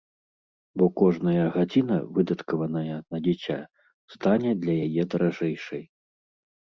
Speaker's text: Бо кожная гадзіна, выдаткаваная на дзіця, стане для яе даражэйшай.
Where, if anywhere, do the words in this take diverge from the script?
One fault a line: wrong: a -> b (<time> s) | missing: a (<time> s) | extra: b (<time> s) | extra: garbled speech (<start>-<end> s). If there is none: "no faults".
no faults